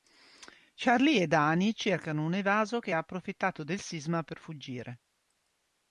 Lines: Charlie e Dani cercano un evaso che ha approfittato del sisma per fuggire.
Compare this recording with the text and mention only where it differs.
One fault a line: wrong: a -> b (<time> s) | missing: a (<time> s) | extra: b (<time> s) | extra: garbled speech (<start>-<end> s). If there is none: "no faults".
no faults